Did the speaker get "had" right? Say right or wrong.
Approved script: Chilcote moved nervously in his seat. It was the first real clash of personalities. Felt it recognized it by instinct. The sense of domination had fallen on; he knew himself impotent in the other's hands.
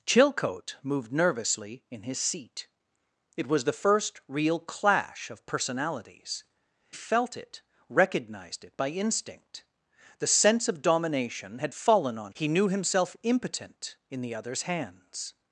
right